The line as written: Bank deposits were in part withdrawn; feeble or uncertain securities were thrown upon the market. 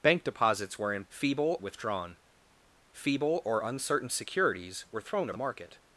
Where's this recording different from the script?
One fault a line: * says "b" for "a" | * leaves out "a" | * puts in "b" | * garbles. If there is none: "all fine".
* says "feeble" for "part"
* leaves out "upon"